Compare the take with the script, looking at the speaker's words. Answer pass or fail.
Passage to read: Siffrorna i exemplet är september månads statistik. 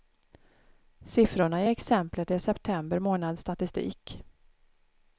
pass